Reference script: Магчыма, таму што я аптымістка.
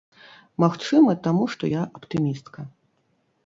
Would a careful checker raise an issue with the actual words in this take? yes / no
no